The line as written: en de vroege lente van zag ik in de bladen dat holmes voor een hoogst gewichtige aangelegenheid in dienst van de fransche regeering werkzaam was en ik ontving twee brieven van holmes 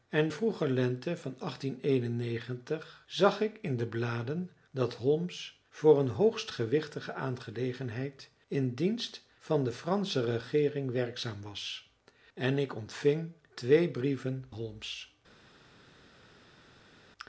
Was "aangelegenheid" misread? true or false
false